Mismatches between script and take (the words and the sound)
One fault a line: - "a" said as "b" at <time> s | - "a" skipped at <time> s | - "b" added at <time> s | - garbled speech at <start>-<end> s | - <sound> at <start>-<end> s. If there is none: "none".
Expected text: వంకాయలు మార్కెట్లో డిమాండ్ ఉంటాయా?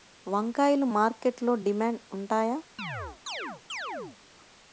- chirp at 2.8-4.2 s